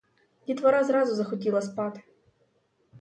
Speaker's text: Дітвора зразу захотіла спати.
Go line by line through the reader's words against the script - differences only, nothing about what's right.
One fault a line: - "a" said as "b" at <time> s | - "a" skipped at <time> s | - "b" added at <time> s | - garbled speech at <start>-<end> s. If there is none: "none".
none